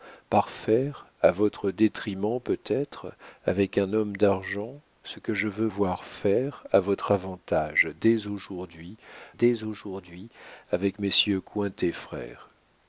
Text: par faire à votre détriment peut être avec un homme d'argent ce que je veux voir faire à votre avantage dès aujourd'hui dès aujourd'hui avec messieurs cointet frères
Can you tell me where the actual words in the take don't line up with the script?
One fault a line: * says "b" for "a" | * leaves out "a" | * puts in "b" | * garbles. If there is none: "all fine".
all fine